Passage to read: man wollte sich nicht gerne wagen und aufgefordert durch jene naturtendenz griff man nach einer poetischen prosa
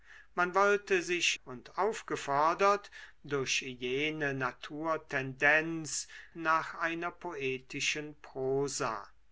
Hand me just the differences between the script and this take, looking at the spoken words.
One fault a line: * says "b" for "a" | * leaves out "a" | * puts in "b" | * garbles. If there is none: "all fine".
* leaves out "nicht gerne wagen"
* leaves out "griff man"